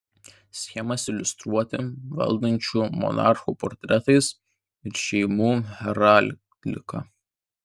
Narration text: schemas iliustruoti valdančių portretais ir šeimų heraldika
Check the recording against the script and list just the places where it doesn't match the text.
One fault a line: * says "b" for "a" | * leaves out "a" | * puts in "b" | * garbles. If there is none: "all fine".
* puts in "monarchų"